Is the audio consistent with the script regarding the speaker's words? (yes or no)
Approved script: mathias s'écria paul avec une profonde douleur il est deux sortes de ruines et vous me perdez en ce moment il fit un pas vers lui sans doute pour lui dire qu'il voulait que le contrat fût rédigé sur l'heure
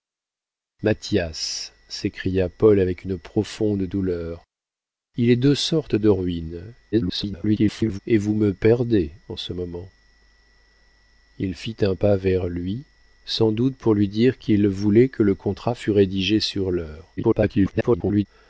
no